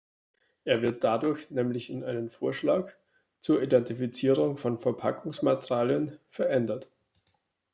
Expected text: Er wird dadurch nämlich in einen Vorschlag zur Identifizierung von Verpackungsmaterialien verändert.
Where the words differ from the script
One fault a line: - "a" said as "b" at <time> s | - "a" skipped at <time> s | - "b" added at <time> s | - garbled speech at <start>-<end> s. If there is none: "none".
none